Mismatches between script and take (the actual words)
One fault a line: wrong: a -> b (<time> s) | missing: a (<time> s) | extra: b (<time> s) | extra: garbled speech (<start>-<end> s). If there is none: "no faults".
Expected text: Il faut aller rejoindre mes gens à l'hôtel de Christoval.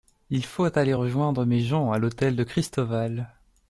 no faults